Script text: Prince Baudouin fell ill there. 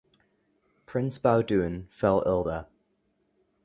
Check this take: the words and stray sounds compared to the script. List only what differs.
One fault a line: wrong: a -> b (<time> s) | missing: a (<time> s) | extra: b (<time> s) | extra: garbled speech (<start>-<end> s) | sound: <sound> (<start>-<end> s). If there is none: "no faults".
no faults